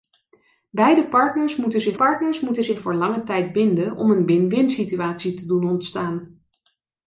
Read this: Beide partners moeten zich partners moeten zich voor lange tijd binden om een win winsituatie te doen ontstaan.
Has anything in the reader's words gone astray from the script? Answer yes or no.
no